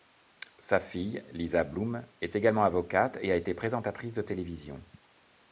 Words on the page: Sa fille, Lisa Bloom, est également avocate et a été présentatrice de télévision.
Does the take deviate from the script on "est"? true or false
false